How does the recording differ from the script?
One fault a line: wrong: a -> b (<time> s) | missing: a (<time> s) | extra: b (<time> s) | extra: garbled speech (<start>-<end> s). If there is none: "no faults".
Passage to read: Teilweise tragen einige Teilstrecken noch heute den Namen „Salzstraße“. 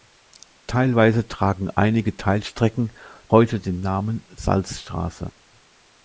missing: noch (2.9 s)